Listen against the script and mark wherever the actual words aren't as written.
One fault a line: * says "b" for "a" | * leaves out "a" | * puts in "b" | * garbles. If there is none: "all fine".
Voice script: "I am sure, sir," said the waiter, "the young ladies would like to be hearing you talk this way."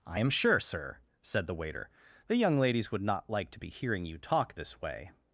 * puts in "not"